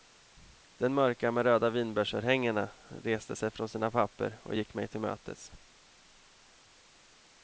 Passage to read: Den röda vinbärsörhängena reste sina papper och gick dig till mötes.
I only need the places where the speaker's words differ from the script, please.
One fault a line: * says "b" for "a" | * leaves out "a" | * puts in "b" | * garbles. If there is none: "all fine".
* puts in "mörka med"
* puts in "sig från"
* says "mig" for "dig"